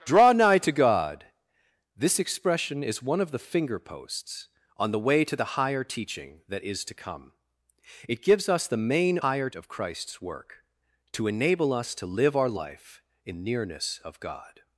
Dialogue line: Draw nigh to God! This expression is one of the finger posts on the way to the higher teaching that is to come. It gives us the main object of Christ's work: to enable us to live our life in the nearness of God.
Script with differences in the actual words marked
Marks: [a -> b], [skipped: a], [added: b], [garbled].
Draw nigh to God! This expression is one of the finger posts on the way to the higher teaching that is to come. It gives us the main [object -> higher] of Christ's work: to enable us to live our life in [skipped: the] nearness of God.